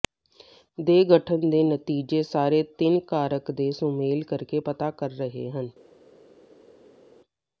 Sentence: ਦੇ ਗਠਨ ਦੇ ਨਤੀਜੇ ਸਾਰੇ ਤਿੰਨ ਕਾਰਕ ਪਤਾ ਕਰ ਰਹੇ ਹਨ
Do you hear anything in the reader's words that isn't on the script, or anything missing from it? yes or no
yes